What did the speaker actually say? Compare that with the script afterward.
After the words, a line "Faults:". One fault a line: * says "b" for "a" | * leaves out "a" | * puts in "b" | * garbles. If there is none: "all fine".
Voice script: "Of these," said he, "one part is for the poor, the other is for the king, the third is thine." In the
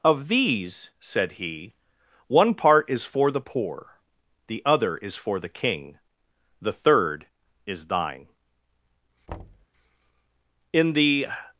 "Of these," said he, "one part is for the poor, the other is for the king, the third is thine." In the
Faults:
all fine